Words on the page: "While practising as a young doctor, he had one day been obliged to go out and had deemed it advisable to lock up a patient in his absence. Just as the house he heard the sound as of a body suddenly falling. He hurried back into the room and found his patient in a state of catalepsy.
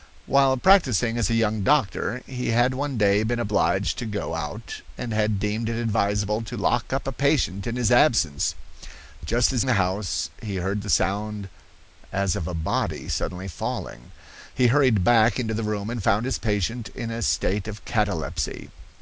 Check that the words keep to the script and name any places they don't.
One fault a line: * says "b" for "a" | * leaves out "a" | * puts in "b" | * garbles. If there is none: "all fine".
all fine